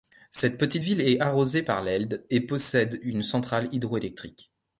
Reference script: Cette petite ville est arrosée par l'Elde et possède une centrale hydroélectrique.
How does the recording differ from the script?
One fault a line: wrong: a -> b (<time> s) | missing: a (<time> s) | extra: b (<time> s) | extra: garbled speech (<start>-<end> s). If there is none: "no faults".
no faults